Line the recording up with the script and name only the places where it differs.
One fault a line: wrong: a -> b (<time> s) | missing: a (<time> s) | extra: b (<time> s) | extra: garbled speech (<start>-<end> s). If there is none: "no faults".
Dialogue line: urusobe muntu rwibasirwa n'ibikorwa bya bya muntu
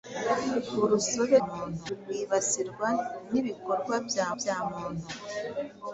no faults